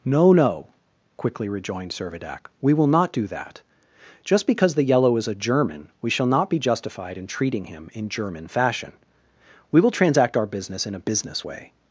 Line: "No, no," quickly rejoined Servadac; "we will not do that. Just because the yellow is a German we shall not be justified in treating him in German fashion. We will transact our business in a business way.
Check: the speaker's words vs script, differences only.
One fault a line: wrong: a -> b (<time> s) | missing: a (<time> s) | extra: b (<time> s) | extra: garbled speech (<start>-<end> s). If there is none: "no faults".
no faults